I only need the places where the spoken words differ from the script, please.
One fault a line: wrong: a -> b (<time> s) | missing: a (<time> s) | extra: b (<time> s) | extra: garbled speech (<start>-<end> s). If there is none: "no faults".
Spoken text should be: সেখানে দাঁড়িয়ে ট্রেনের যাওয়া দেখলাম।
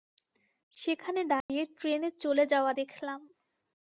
extra: চলে (2.2 s)